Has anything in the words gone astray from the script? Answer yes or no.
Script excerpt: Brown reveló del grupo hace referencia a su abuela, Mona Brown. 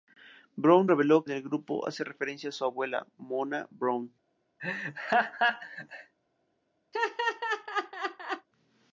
no